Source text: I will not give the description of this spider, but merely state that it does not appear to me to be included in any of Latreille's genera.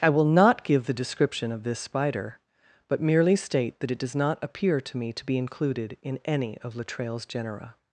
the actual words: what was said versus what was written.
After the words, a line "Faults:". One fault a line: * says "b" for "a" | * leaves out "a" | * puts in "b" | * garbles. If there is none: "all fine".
I will not give the description of this spider, but merely state that it does not appear to me to be included in any of Latreille's genera.
Faults:
all fine